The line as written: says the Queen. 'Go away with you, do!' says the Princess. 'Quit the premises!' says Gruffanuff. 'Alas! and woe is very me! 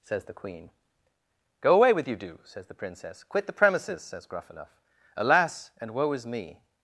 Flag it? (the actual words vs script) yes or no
yes